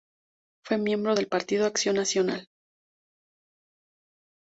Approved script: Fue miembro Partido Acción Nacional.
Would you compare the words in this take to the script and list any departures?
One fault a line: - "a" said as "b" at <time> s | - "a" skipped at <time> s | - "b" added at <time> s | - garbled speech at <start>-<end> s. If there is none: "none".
- "del" added at 1.1 s